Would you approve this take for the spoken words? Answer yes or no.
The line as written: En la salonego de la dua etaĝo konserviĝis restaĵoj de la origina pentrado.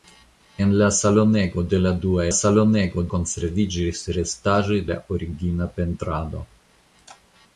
no